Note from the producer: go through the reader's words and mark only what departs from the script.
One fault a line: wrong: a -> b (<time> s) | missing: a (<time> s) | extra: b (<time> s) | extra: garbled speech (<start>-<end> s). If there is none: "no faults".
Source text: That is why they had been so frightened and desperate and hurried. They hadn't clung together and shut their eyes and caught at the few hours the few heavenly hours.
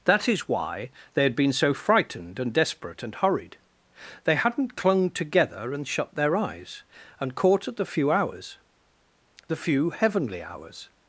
no faults